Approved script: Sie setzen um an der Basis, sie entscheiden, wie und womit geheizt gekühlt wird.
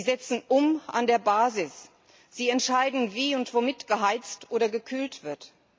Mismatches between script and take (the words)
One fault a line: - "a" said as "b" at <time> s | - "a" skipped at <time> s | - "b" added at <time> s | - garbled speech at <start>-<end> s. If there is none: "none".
- "oder" added at 4.5 s